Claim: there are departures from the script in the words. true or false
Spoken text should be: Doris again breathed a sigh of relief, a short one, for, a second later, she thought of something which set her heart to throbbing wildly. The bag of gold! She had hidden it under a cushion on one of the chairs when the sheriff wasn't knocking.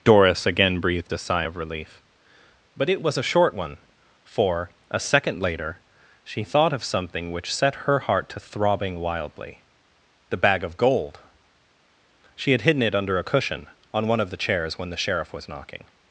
true